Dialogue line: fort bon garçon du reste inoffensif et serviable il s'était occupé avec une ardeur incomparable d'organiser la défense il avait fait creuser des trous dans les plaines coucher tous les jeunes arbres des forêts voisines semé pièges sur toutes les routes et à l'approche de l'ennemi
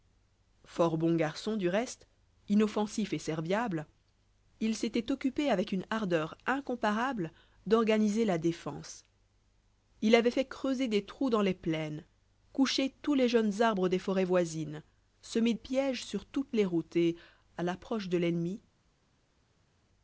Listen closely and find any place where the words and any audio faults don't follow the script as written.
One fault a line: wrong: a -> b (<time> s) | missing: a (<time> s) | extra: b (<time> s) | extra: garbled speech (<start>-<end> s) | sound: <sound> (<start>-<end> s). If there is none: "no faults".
no faults